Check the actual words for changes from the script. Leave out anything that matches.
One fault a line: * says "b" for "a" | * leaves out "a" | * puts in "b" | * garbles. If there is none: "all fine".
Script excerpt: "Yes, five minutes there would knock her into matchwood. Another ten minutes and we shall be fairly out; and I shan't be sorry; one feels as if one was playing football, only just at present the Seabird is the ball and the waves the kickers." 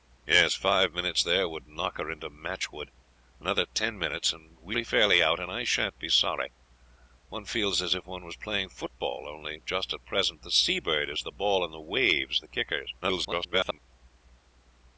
* leaves out "shall"
* garbles